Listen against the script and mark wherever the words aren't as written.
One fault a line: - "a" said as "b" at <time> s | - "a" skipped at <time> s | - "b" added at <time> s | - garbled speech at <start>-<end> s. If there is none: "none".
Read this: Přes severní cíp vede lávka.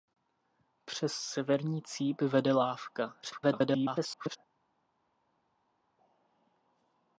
- garbled speech at 3.2-4.4 s